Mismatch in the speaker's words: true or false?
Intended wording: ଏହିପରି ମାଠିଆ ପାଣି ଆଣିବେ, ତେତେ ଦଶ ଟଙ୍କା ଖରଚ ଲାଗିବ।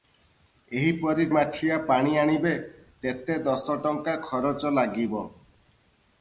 false